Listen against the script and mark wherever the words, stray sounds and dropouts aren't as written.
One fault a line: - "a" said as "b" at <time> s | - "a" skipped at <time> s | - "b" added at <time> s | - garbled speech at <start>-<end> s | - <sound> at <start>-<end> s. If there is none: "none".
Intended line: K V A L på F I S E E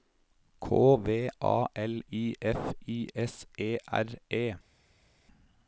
- "på" said as "I" at 2.1 s
- "R" added at 3.9 s